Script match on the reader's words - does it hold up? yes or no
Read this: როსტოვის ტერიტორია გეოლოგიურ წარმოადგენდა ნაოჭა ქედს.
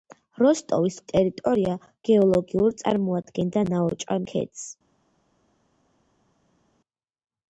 yes